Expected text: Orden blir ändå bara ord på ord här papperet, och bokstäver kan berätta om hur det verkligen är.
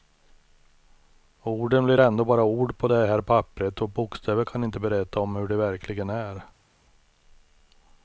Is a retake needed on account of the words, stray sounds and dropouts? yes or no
yes